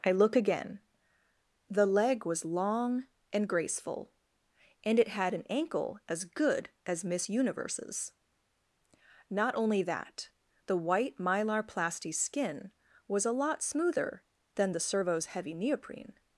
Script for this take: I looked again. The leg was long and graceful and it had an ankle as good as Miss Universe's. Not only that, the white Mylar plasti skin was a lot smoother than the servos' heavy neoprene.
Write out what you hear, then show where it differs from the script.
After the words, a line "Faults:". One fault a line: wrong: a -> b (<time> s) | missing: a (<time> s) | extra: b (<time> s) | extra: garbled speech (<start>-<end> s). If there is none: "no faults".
I look again. The leg was long and graceful and it had an ankle as good as Miss Universe's. Not only that, the white Mylar plasti skin was a lot smoother than the servos' heavy neoprene.
Faults:
wrong: looked -> look (0.1 s)